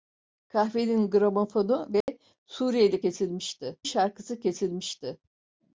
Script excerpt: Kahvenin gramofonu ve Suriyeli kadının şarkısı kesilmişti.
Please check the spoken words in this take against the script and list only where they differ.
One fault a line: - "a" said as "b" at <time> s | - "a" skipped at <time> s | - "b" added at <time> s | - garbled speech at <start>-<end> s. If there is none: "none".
- "kadının" said as "kesilmişti" at 3.0 s